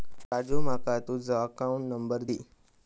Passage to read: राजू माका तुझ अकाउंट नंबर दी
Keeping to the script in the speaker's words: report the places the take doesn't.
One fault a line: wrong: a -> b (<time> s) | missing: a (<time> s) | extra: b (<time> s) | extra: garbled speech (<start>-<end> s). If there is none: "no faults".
no faults